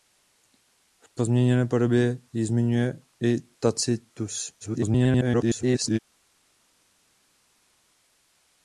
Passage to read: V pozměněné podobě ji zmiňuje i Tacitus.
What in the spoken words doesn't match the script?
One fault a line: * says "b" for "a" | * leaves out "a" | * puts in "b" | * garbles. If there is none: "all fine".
* garbles